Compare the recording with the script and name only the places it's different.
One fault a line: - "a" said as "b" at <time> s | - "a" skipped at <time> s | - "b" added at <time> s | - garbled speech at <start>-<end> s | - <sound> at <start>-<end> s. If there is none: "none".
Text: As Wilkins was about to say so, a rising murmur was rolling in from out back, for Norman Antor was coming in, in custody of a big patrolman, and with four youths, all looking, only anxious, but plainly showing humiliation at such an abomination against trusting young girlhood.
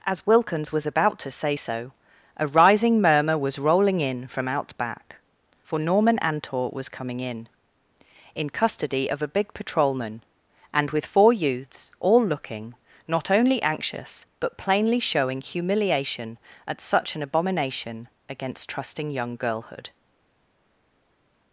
- "not" added at 13.1 s